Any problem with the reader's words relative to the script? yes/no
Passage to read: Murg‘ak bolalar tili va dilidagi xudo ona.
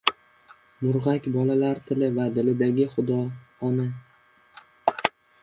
no